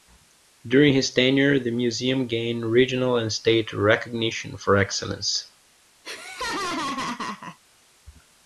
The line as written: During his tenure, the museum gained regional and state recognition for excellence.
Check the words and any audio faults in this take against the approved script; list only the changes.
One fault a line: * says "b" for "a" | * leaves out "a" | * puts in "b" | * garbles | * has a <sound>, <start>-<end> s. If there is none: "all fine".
* has a laugh, 6.0-7.6 s